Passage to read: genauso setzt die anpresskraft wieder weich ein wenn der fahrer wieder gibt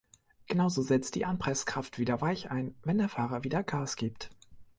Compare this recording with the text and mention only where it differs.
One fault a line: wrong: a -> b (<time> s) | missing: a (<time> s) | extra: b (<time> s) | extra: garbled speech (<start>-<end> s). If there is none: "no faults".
extra: gas (3.6 s)